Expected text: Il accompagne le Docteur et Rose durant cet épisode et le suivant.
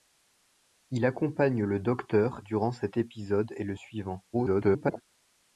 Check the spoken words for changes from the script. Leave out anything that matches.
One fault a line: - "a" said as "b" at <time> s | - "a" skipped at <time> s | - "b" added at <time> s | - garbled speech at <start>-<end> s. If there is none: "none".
- "et Rose" skipped at 2.4 s
- garbled speech at 4.3-5.0 s